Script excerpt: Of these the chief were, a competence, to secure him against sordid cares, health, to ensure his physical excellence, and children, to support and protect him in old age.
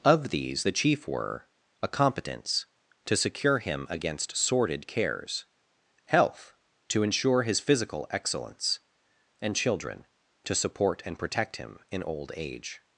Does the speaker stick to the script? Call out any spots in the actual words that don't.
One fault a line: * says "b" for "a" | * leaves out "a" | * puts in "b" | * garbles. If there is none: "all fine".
all fine